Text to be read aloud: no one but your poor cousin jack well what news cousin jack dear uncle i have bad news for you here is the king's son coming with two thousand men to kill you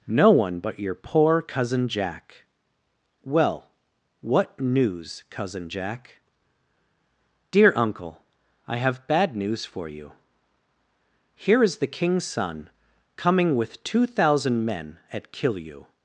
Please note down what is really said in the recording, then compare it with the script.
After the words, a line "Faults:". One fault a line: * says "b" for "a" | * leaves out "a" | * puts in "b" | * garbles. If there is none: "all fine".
no one but your poor cousin jack well what news cousin jack dear uncle i have bad news for you here is the king's son coming with two thousand men at kill you
Faults:
* says "at" for "to"